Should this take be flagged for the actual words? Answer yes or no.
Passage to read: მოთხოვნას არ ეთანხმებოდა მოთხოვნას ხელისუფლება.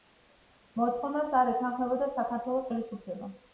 yes